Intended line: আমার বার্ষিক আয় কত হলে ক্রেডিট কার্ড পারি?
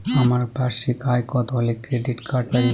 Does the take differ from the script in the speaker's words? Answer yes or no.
no